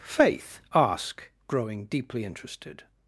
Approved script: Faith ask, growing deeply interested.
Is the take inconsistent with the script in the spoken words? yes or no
no